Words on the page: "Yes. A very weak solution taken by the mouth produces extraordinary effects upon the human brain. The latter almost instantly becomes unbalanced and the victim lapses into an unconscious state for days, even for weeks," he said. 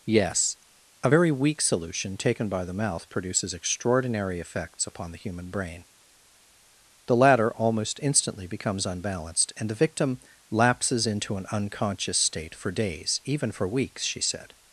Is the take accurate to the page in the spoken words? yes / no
no